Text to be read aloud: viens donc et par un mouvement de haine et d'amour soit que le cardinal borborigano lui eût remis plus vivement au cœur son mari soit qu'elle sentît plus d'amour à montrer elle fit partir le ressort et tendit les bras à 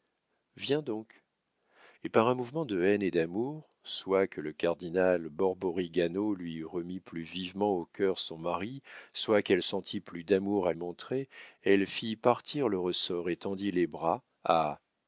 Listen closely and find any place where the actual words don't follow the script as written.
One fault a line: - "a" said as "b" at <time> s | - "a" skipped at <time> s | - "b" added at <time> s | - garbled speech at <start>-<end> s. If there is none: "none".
none